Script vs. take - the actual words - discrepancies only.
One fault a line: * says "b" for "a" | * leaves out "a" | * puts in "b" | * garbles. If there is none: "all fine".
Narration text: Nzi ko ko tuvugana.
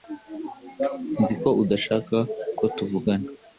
* puts in "udashaka"